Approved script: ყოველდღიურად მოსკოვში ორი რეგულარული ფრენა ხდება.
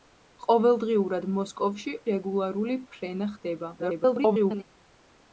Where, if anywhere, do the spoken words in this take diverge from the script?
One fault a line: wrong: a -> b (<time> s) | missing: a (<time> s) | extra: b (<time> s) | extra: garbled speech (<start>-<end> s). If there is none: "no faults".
missing: ორი (1.9 s)
extra: garbled speech (3.8-4.6 s)